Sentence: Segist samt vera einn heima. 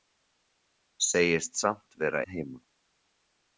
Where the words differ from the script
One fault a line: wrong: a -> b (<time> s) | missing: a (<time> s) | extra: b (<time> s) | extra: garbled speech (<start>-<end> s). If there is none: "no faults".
missing: einn (2.2 s)